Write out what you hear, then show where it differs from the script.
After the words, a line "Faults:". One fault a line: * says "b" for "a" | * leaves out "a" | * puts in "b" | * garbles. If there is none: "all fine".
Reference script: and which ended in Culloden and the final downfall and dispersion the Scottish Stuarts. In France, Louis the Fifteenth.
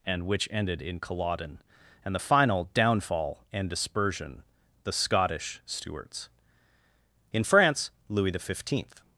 and which ended in Culloden and the final downfall and dispersion the Scottish Stuarts. In France, Louis the Fifteenth.
Faults:
all fine